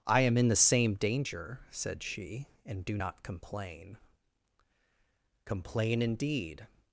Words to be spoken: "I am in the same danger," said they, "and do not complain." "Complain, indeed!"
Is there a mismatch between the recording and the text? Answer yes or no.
yes